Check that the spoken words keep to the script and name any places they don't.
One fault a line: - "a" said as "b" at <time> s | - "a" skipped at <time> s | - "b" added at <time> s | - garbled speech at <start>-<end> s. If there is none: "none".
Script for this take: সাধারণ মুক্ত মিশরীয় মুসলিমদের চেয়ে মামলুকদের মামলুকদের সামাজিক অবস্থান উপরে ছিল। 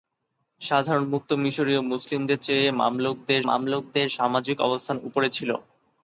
none